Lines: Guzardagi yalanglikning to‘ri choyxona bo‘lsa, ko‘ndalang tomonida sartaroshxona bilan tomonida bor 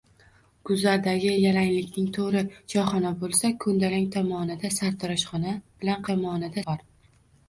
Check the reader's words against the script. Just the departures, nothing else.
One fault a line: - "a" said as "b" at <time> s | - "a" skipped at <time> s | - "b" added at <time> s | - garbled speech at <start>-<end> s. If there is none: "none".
none